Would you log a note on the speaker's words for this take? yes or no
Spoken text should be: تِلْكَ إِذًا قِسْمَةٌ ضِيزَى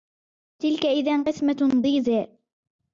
no